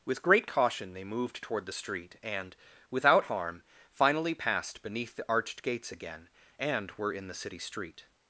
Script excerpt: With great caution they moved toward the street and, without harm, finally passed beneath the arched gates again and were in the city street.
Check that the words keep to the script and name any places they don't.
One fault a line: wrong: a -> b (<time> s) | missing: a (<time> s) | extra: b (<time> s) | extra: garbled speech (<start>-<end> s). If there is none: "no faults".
no faults